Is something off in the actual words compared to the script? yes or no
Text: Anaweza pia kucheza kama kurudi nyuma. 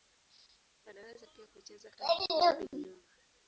no